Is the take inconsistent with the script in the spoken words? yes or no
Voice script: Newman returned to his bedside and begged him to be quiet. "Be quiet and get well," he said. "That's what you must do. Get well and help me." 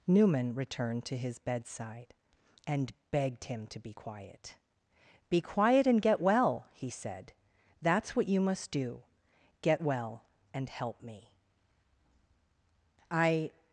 yes